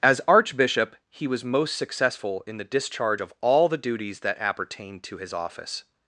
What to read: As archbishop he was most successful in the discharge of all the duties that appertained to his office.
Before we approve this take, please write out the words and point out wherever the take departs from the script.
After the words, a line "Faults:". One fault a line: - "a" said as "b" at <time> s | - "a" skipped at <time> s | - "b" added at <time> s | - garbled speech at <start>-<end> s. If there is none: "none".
As archbishop he was most successful in the discharge of all the duties that appertained to his office.
Faults:
none